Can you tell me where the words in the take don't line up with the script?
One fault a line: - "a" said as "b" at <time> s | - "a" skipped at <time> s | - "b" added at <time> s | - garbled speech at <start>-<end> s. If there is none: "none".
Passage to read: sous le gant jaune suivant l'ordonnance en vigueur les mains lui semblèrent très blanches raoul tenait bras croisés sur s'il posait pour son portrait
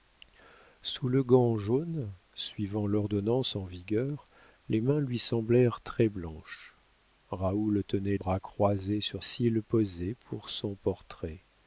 none